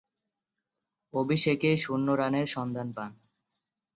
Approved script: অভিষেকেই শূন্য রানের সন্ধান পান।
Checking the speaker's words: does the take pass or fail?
pass